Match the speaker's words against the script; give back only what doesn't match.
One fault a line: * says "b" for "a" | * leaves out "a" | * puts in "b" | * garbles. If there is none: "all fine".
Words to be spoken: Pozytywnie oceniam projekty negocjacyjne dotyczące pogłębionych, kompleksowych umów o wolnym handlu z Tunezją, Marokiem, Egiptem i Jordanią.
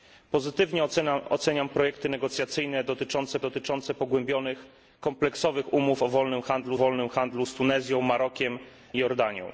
* puts in "dotyczące"
* puts in "wolnym handlu"
* leaves out "Egiptem"